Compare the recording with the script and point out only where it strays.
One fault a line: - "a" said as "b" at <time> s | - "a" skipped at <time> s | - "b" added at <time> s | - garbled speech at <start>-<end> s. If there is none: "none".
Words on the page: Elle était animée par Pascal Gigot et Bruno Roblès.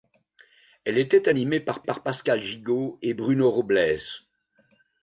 - "par" added at 1.8 s